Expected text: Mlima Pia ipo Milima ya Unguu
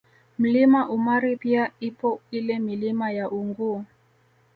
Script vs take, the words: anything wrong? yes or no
yes